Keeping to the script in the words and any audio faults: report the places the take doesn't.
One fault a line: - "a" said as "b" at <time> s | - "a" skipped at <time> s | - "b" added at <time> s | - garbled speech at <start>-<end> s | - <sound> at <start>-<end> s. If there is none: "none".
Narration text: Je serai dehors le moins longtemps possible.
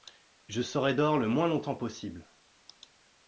none